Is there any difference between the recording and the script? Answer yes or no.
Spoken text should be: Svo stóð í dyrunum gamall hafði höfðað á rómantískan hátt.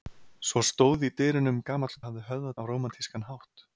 no